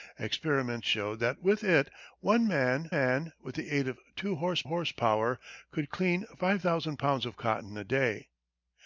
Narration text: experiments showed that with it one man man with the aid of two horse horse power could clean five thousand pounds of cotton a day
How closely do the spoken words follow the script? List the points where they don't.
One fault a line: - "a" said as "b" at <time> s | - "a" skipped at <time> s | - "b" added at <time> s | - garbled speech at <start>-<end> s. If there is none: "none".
none